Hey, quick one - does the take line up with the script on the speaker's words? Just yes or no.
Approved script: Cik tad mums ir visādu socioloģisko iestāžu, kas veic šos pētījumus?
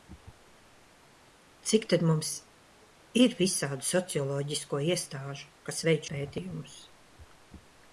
no